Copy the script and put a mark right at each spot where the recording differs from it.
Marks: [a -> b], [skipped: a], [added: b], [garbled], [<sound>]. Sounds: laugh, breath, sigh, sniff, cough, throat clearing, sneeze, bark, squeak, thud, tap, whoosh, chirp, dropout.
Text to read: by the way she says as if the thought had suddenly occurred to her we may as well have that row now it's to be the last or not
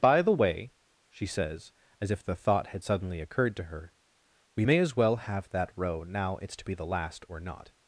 by the way she says as if the thought had suddenly occurred to her we may as well have that row now it's to be the last or not